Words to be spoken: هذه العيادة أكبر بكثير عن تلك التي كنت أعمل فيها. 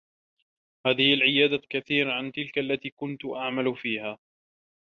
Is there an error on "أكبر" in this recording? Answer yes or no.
yes